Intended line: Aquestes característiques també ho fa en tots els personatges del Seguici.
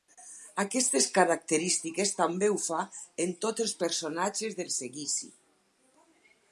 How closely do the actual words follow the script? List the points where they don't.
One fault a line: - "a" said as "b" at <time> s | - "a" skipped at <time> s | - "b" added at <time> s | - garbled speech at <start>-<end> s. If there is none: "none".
none